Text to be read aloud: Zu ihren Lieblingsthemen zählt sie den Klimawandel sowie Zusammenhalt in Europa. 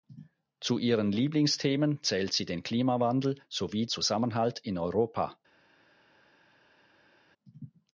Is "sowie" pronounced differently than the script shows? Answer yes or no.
no